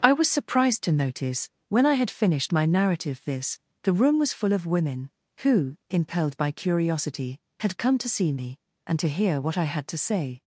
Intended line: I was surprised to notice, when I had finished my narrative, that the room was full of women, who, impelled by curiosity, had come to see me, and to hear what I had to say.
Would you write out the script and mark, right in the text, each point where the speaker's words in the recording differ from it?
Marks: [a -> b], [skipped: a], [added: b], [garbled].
I was surprised to notice, when I had finished my narrative, [that -> this] the room was full of women, who, impelled by curiosity, had come to see me, and to hear what I had to say.